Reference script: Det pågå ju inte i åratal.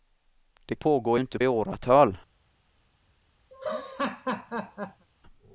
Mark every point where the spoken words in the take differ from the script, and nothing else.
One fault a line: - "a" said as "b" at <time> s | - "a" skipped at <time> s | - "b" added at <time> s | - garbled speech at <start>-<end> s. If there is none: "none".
none